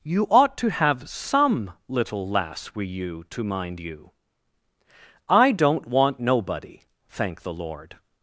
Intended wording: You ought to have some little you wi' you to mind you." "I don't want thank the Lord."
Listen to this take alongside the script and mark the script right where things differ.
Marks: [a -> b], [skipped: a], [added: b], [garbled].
You ought to have some little [you -> lass] wi' you to mind you." "I don't want [added: nobody] thank the Lord."